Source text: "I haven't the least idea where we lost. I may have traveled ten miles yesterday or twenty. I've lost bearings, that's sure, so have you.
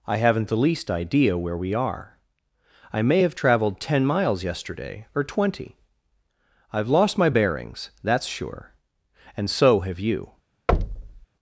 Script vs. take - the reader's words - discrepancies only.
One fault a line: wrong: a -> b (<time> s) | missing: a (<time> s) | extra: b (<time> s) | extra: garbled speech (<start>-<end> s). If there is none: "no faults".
wrong: lost -> are (1.7 s)
extra: my (7.2 s)
extra: and (9.4 s)